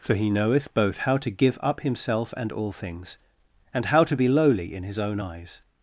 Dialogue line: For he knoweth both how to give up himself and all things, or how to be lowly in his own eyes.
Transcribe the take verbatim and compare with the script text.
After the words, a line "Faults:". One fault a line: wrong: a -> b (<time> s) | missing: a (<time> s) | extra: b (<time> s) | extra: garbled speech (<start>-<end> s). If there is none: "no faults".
For he knoweth both how to give up himself and all things, and how to be lowly in his own eyes.
Faults:
wrong: or -> and (3.7 s)